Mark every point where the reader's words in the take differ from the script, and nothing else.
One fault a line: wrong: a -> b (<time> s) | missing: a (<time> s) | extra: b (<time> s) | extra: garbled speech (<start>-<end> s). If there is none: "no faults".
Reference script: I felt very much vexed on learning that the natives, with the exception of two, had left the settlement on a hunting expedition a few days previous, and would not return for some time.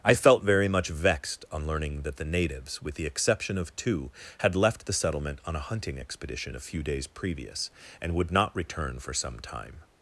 no faults